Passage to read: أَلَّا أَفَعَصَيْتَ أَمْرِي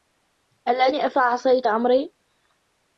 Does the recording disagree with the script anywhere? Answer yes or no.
no